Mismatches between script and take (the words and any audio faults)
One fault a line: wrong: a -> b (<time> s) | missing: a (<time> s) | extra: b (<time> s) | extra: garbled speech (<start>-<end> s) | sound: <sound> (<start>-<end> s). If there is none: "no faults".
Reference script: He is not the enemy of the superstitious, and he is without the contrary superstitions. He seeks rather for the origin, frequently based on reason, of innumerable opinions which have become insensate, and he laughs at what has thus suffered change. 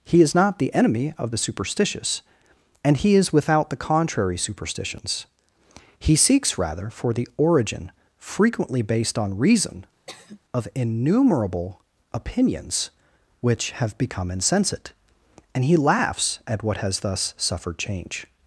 sound: sigh (10.1-10.4 s)